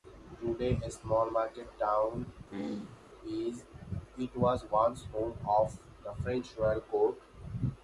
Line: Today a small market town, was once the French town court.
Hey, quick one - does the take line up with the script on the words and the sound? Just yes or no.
no